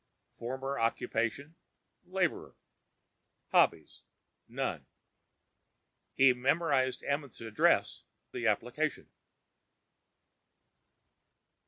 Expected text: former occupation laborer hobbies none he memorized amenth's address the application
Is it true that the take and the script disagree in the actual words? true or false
false